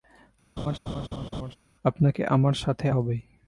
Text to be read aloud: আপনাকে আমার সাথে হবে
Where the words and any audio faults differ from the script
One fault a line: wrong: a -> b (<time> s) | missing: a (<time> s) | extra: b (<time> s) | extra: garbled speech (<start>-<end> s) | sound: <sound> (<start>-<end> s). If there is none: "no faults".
sound: laugh (0.6-1.6 s)